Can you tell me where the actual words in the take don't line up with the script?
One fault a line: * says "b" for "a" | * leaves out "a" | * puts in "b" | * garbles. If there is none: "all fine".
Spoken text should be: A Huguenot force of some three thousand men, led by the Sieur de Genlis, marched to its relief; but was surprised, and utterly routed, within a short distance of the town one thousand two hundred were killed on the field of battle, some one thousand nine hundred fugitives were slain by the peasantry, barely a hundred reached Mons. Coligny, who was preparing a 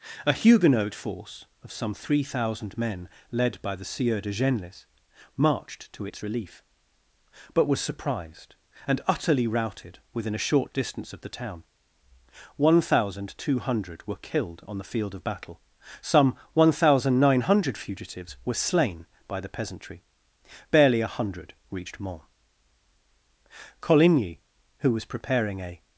all fine